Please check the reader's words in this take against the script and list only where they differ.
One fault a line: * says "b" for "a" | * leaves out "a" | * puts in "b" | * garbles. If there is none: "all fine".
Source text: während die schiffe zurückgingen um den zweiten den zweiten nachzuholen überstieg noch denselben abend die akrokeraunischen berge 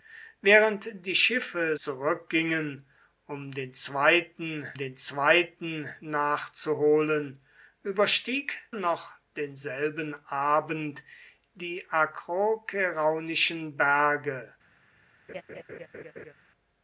all fine